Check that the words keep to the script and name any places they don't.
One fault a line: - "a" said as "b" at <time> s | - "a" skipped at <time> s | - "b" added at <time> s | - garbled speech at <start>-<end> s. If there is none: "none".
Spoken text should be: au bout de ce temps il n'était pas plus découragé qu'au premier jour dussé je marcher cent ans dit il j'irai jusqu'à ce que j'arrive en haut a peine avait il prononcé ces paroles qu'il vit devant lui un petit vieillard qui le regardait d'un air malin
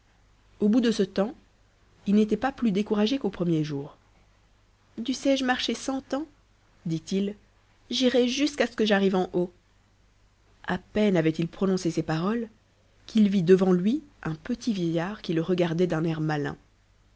none